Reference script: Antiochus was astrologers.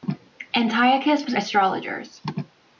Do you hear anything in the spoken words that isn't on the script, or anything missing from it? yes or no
no